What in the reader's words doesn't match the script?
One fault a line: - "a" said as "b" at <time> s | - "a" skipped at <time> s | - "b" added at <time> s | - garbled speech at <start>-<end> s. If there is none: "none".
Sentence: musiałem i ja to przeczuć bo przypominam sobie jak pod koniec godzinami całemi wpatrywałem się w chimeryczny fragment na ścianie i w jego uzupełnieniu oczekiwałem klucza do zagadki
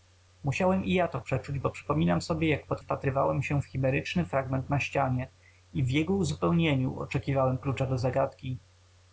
- "koniec godzinami całemi" skipped at 2.8 s